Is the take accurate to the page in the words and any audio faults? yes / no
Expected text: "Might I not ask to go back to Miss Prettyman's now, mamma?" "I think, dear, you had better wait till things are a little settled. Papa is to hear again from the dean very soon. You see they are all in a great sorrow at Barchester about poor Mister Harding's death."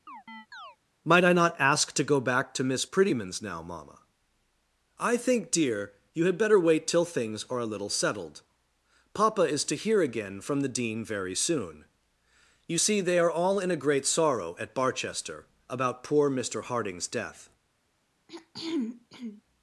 no